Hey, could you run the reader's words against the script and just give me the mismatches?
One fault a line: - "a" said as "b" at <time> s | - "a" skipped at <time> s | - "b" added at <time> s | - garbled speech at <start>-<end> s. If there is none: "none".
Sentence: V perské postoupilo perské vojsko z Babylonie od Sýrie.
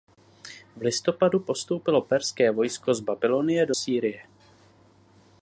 - "perské" said as "listopadu" at 0.8 s
- "od" said as "do" at 3.6 s